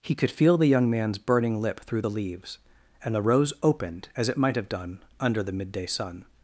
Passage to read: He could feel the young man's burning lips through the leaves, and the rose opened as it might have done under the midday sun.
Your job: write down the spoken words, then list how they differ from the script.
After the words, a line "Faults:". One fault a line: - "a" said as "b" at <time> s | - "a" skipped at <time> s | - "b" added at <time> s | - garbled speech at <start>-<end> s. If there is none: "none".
He could feel the young man's burning lip through the leaves, and the rose opened as it might have done under the midday sun.
Faults:
- "lips" said as "lip" at 1.6 s